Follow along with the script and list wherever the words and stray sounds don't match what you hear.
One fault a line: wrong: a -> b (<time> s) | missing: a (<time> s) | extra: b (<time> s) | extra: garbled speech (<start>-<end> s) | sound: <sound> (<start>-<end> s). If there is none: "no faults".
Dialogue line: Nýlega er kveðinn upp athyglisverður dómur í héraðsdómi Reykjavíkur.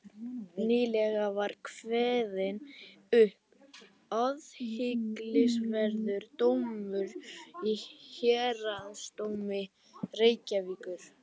wrong: er -> var (1.4 s)